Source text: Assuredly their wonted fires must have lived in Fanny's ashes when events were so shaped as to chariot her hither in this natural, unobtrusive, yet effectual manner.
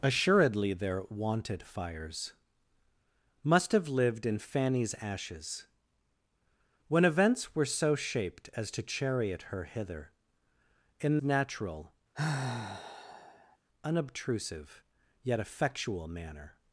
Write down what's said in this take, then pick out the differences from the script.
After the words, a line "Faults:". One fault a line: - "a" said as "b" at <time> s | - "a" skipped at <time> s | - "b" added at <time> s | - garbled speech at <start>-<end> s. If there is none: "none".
Assuredly their wonted fires must have lived in Fanny's ashes when events were so shaped as to chariot her hither in natural, unobtrusive, yet effectual manner.
Faults:
- "this" skipped at 11.2 s